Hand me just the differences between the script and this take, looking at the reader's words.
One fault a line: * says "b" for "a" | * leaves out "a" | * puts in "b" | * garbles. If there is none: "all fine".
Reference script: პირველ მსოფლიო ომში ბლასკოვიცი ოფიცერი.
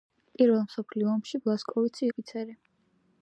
all fine